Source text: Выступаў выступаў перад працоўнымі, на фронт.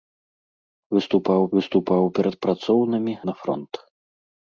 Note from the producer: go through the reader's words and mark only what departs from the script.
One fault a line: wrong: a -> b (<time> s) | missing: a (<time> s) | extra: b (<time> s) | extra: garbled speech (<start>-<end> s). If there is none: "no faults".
no faults